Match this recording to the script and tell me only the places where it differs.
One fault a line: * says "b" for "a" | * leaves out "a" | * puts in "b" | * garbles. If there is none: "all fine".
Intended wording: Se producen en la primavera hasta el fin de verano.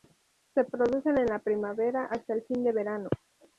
all fine